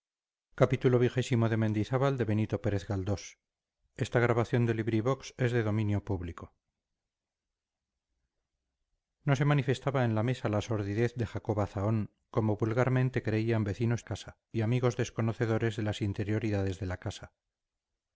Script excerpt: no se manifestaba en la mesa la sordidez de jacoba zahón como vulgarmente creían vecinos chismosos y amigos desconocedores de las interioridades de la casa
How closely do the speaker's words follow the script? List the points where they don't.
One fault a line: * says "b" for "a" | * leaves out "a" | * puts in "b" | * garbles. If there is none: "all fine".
* says "casa" for "chismosos"